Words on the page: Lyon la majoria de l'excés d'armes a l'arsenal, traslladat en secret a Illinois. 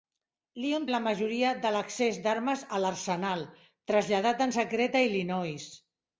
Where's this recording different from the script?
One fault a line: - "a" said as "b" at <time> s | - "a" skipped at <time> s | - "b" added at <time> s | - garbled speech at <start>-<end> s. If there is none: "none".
none